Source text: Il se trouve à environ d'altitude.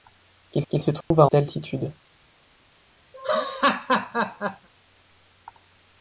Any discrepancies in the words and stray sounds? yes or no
yes